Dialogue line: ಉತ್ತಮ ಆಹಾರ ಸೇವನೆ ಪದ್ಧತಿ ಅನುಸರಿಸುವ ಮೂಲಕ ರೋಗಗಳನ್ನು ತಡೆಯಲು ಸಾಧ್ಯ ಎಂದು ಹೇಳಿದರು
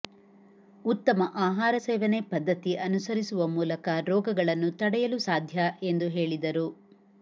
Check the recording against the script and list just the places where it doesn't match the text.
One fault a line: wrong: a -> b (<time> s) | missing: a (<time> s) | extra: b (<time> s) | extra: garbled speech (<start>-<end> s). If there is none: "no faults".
no faults